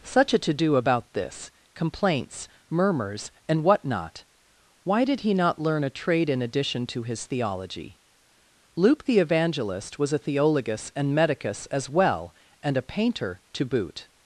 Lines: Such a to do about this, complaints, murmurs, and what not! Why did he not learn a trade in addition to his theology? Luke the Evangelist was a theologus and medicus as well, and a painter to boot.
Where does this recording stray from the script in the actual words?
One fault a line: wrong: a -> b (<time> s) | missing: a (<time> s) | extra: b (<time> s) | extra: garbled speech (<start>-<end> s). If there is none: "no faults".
no faults